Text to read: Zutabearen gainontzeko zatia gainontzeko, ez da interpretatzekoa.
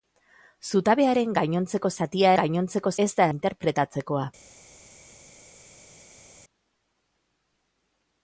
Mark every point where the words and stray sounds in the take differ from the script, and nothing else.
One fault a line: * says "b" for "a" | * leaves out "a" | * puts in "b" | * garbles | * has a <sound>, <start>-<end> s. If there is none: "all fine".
all fine